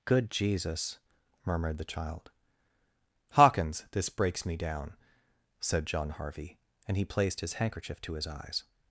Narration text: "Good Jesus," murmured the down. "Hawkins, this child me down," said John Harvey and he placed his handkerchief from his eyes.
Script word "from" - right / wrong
wrong